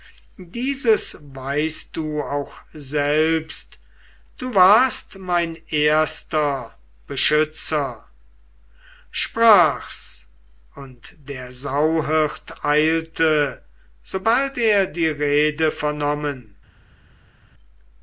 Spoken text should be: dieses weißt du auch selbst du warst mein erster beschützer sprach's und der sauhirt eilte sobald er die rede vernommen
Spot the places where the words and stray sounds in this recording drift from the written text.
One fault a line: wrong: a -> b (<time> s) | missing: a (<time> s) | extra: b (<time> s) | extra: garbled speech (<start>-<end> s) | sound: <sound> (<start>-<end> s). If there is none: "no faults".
no faults